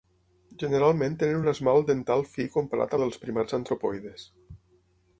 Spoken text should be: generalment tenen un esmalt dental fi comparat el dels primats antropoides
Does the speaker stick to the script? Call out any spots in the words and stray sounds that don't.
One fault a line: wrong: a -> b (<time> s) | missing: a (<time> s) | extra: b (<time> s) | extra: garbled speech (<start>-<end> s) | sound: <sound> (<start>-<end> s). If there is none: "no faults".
no faults